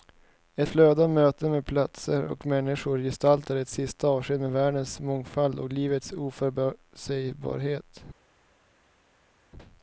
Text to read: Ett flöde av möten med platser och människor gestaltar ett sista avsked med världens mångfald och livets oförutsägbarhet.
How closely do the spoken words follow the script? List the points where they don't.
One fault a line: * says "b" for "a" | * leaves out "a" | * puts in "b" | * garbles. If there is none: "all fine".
all fine